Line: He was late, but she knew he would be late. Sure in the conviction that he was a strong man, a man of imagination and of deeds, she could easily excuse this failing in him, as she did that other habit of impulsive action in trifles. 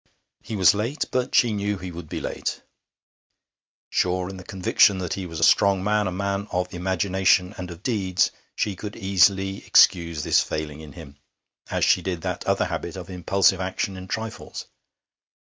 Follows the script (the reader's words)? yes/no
yes